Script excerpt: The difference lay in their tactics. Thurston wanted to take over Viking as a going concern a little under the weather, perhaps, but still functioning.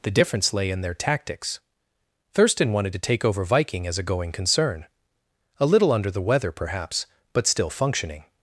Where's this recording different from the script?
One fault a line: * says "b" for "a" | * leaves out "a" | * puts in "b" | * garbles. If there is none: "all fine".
all fine